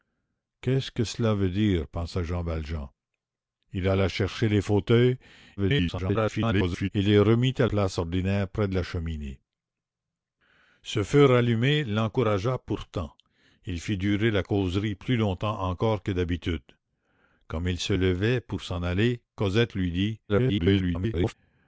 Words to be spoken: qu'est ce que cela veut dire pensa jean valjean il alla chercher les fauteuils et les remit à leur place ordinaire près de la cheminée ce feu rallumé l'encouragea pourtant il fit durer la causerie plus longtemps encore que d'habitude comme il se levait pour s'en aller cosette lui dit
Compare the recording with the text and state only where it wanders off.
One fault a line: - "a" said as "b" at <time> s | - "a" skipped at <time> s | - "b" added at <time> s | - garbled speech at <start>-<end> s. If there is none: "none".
- garbled speech at 5.6-6.9 s
- "leur" skipped at 7.7 s
- garbled speech at 20.3-21.3 s